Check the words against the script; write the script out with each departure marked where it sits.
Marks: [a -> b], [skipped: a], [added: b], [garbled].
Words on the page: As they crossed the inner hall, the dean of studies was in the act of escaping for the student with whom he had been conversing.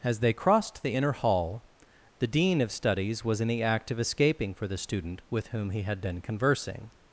As they crossed the inner hall, the dean of studies was in the act of escaping for the student with whom he had been conversing.